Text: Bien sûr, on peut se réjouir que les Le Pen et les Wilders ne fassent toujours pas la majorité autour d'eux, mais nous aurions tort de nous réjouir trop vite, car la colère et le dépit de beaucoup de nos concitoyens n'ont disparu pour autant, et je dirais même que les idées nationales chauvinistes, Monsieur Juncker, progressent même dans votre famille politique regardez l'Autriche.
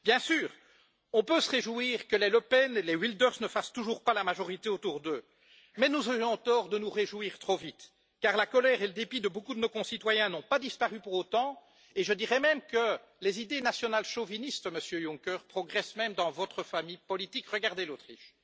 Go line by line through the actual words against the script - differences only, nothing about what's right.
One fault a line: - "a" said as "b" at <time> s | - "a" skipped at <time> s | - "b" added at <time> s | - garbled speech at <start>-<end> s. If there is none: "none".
- "pas" added at 10.4 s